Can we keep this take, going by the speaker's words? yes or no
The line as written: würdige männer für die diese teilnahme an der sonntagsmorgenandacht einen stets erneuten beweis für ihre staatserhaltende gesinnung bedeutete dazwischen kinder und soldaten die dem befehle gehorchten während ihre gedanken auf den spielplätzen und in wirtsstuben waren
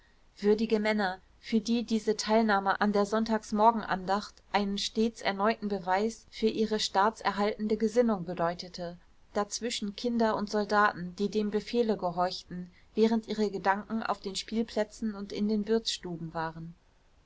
no